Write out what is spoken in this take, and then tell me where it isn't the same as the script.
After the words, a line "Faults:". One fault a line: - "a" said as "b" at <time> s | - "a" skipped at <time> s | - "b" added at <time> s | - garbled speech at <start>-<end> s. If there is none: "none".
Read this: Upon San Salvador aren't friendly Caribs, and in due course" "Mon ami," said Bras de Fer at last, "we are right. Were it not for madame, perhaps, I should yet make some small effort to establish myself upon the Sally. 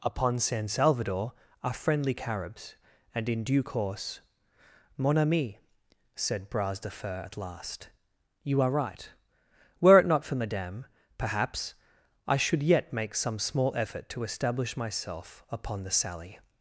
Upon San Salvador are friendly Caribs, and in due course" "Mon ami," said Bras de Fer at last, "you are right. Were it not for madame, perhaps, I should yet make some small effort to establish myself upon the Sally.
Faults:
- "aren't" said as "are" at 1.6 s
- "we" said as "you" at 8.4 s